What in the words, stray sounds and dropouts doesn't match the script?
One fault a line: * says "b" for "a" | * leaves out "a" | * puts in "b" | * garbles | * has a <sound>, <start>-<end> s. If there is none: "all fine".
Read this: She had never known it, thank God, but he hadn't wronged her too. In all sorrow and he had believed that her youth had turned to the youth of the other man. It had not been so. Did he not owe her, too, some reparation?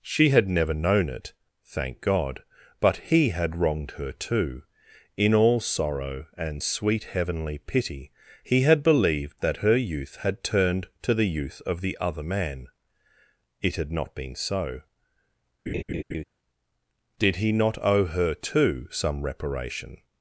* says "had" for "hadn't"
* puts in "sweet heavenly pity"
* has a laugh, 15.7-16.2 s